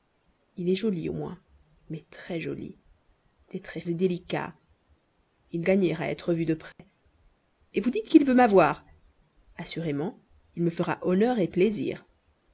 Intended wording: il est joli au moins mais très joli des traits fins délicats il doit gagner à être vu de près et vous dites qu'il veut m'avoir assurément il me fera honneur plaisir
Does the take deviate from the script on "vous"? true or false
false